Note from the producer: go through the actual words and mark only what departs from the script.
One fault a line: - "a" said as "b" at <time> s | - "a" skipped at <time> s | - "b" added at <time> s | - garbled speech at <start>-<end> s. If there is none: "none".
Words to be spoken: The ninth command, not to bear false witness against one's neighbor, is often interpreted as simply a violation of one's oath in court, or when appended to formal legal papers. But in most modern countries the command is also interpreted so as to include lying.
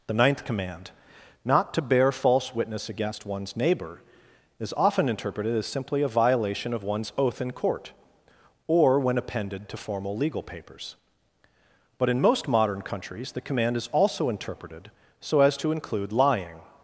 none